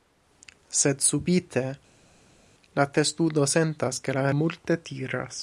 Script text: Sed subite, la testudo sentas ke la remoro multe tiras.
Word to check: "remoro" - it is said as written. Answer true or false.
false